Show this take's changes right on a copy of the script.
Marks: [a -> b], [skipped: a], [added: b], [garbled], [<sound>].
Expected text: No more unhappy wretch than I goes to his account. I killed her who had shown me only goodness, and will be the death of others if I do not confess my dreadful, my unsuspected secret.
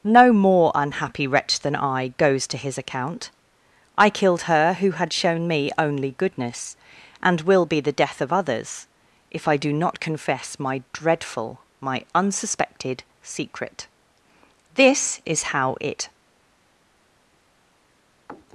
No more unhappy wretch than I goes to his account. I killed her who had shown me only goodness, and will be the death of others if I do not confess my dreadful, my unsuspected secret. [added: This is how it]